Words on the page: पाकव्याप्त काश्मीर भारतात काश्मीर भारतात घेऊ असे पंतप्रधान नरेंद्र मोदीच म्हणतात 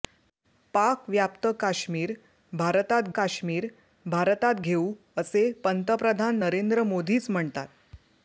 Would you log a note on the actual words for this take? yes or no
no